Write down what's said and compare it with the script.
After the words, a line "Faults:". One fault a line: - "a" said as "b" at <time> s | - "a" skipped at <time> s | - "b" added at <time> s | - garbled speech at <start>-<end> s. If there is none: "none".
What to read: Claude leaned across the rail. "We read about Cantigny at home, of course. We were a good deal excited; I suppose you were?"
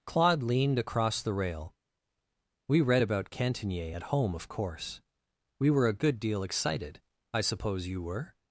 Claude leaned across the rail. "We read about Cantigny at home, of course. We were a good deal excited; I suppose you were?"
Faults:
none